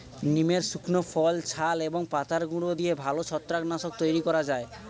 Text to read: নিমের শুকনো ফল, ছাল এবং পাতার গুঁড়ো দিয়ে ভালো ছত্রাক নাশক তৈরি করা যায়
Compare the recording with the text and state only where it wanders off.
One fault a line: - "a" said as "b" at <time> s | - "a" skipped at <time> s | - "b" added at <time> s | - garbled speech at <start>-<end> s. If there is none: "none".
none